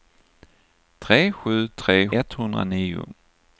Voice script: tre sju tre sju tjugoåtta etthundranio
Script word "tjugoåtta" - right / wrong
wrong